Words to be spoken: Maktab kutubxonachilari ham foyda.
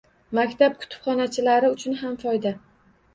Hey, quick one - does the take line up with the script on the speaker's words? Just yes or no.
no